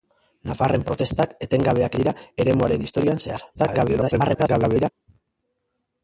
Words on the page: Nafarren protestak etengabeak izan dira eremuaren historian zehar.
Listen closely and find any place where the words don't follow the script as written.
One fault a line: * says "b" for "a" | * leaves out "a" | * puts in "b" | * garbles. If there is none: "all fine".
* leaves out "izan"
* garbles